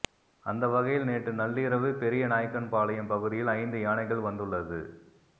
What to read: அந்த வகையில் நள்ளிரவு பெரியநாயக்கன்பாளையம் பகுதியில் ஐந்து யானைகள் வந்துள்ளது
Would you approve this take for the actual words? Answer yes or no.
no